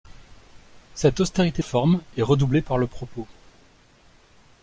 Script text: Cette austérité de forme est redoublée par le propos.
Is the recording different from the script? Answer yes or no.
yes